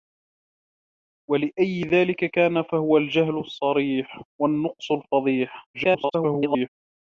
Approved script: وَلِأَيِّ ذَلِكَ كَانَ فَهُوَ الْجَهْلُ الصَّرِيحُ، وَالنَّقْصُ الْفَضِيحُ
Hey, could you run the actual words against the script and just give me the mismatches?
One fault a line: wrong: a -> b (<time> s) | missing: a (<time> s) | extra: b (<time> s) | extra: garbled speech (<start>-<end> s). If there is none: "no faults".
extra: garbled speech (5.7-6.7 s)